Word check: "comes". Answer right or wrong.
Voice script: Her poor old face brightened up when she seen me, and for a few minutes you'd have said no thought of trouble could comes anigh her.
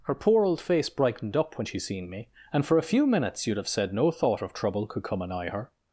wrong